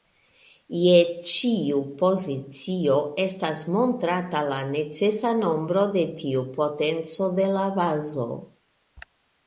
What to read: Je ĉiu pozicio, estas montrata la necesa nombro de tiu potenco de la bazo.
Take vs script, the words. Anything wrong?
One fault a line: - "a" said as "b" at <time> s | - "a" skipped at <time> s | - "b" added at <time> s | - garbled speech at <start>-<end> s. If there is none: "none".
none